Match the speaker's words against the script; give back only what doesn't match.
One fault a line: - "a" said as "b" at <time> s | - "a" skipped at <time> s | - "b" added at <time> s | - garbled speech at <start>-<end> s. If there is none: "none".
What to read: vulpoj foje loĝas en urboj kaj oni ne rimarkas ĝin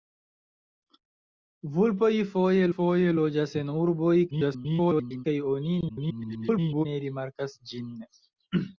- "foje" added at 2.7 s
- garbled speech at 4.3-5.3 s
- garbled speech at 5.9-6.9 s